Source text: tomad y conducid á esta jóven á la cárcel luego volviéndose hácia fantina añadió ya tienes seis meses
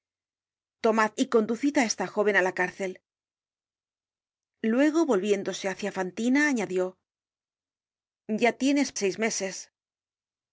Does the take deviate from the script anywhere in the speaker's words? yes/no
no